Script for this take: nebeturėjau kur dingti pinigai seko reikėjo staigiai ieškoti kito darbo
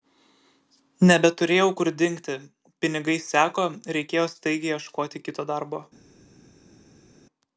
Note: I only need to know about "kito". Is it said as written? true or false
true